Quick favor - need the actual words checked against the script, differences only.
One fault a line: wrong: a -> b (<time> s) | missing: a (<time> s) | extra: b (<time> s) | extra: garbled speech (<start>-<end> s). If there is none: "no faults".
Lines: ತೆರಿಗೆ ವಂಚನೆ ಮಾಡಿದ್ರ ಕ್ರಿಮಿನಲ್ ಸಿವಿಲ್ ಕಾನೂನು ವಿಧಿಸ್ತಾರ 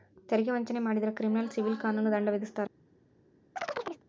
extra: ದಂಡ (2.1 s)